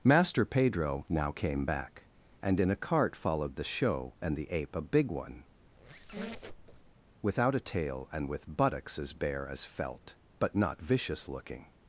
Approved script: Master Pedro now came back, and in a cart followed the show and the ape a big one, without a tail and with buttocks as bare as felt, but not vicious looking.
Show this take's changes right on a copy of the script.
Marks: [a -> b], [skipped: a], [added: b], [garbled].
Master Pedro now came back, and in a cart followed the show and the ape a big one, without a tail and with buttocks as bare as felt, but not vicious looking.